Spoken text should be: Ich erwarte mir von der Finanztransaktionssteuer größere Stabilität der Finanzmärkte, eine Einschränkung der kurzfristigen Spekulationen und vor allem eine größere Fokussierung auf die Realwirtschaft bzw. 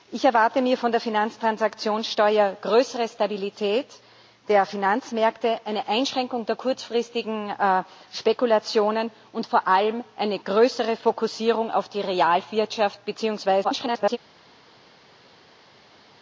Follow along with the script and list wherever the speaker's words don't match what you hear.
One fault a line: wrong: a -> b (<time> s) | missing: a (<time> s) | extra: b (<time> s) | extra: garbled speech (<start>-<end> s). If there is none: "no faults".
extra: garbled speech (13.6-14.2 s)